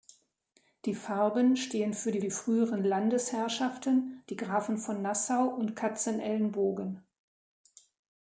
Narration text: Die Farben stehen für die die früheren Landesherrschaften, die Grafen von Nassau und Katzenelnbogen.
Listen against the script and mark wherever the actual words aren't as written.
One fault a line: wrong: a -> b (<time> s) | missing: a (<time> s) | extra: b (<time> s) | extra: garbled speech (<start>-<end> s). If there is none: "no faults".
no faults